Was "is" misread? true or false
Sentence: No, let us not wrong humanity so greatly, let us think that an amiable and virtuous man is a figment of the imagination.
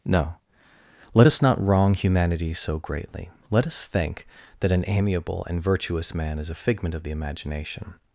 false